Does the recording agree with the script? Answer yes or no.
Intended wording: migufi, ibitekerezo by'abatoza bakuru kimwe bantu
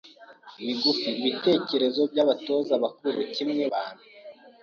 yes